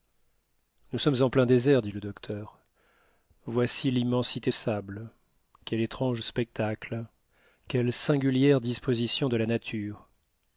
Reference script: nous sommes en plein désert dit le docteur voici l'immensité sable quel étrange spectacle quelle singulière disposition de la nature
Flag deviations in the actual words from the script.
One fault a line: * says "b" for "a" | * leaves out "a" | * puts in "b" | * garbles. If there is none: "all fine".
all fine